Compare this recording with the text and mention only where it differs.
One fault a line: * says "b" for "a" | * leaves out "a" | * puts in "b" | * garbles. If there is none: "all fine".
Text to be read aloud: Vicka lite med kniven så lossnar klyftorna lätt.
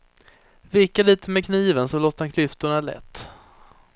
all fine